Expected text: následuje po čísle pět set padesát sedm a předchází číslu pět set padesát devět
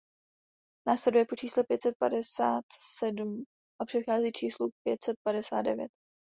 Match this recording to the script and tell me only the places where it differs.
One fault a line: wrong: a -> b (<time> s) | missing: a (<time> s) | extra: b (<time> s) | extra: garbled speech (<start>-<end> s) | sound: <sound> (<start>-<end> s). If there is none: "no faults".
no faults